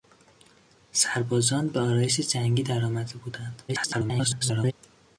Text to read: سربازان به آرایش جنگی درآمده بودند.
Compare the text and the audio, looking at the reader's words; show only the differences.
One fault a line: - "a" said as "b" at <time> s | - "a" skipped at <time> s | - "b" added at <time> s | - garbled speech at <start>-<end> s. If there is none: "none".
- garbled speech at 3.7-4.7 s